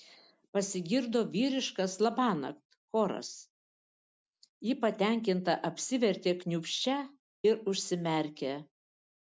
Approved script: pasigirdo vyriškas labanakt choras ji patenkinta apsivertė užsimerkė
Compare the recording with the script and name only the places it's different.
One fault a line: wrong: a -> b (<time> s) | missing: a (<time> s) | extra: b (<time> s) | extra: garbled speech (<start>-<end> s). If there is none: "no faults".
extra: kniūbsčia ir (6.4 s)